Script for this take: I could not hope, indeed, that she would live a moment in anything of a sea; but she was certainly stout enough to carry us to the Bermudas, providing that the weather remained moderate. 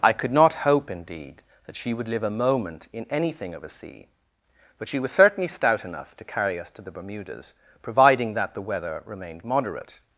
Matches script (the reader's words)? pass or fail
pass